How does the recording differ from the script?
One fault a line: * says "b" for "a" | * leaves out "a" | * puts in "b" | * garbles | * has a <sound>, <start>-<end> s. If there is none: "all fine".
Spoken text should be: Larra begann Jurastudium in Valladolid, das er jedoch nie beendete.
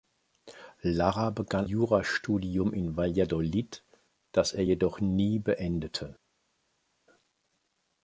all fine